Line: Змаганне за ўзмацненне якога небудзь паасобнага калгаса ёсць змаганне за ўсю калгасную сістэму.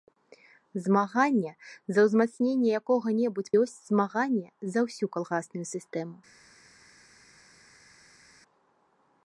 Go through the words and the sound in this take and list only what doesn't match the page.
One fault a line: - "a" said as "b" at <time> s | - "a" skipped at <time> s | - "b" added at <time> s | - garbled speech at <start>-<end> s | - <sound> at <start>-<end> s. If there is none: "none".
- "паасобнага калгаса" skipped at 3.5 s